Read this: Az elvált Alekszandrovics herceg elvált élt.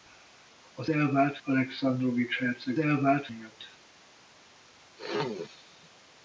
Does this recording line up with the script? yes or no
yes